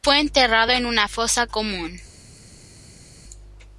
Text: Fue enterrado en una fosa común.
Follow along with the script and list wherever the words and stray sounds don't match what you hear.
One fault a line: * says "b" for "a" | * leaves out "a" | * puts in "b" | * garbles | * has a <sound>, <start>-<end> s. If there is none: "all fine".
all fine